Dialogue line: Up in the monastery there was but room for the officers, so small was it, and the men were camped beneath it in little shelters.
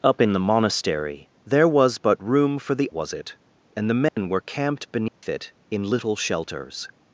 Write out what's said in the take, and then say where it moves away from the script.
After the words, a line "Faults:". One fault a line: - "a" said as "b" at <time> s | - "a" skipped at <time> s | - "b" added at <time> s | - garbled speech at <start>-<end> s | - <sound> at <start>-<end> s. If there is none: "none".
Up in the monastery there was but room for the was it, and the men were camped beneath it in little shelters.
Faults:
- "officers so small" skipped at 2.9 s
- dropout at 4.1-4.2 s
- dropout at 5.1-5.2 s